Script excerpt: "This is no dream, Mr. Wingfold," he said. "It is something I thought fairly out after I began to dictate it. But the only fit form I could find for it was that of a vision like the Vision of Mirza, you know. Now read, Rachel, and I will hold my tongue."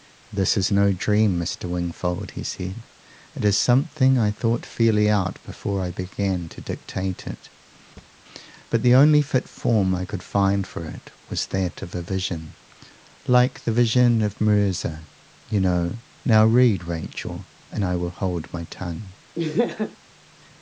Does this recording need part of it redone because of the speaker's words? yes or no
yes